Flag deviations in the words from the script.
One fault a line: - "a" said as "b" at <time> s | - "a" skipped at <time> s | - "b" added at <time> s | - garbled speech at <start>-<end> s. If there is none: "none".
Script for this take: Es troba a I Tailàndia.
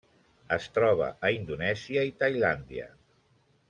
- "Indonèsia" added at 1.4 s